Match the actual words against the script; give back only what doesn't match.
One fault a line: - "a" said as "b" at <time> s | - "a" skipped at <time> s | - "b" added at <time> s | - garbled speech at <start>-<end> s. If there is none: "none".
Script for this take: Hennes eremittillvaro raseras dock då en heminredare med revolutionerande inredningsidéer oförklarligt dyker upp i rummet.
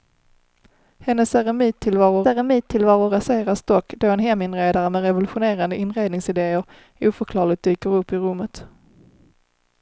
- "eremittillvaro" added at 2.3 s